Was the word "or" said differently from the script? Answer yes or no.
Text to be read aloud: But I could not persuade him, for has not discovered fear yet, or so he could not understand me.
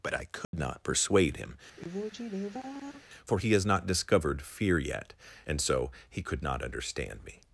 yes